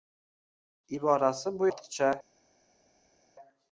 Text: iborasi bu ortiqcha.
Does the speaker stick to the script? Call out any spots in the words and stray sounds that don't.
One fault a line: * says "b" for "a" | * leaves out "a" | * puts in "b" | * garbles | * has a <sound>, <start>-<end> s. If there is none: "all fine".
all fine